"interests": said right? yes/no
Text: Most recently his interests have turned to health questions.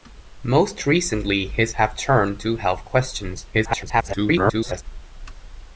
no